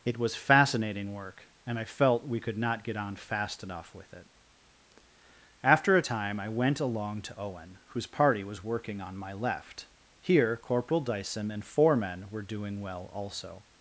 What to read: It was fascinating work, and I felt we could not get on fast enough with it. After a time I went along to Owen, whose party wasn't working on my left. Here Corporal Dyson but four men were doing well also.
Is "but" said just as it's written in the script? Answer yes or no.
no